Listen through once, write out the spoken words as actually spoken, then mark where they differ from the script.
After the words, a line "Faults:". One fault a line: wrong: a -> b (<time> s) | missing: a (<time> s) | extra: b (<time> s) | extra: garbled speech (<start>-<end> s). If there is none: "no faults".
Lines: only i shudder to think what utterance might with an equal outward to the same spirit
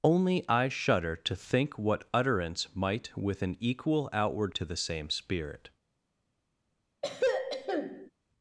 only i shudder to think what utterance might with an equal outward to the same spirit
Faults:
no faults